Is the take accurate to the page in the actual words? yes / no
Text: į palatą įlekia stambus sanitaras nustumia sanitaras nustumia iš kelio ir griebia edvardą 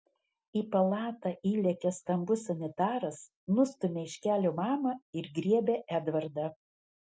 no